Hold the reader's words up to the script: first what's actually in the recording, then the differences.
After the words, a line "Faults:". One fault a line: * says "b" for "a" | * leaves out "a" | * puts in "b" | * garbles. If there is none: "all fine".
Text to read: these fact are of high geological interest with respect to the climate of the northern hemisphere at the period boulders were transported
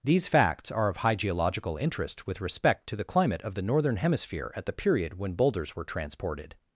these facts are of high geological interest with respect to the climate of the northern hemisphere at the period when boulders were transported
Faults:
* says "facts" for "fact"
* puts in "when"